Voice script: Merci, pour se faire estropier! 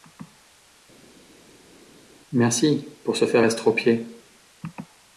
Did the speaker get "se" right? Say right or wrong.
right